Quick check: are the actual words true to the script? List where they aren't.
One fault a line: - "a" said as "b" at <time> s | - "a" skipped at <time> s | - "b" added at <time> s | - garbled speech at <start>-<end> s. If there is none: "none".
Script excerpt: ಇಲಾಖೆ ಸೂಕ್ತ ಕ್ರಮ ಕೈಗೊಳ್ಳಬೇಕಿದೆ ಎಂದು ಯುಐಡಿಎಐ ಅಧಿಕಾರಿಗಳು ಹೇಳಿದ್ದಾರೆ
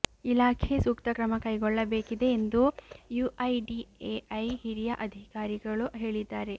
- "ಹಿರಿಯ" added at 4.6 s